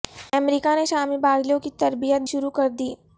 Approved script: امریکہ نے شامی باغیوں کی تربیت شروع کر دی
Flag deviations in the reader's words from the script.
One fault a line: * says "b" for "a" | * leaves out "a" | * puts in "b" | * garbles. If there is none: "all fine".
all fine